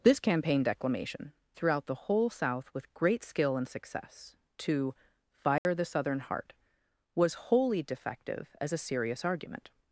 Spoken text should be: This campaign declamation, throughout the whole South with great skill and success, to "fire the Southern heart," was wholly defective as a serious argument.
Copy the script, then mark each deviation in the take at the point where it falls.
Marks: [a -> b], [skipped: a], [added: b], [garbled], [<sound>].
This campaign declamation, throughout the whole South with great skill and success, to "fire [dropout] the Southern heart," was wholly defective as a serious argument.